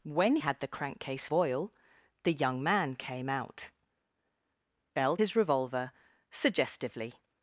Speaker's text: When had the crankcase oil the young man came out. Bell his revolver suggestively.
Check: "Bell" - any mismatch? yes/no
no